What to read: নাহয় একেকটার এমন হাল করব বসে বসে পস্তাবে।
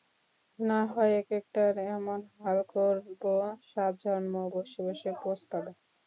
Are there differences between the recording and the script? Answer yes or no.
yes